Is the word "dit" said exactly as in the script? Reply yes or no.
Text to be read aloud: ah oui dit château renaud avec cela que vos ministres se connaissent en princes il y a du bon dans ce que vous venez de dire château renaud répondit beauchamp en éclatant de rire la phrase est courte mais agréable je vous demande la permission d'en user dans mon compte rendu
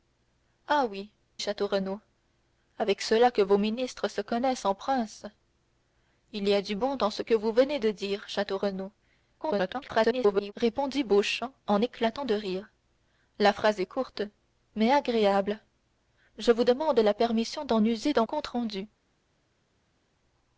no